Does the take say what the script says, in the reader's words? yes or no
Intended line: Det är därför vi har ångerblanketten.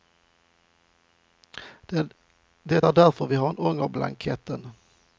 yes